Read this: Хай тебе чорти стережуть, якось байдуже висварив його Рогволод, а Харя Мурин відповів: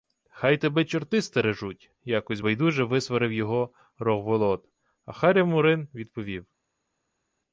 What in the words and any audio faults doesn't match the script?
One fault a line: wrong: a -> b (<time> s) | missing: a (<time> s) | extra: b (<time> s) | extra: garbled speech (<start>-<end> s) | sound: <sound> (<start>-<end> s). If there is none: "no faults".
no faults